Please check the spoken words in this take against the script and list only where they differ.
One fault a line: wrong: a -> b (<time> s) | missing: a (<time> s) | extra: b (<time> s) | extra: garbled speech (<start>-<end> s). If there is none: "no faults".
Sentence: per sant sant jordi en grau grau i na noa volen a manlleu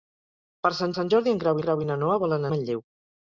no faults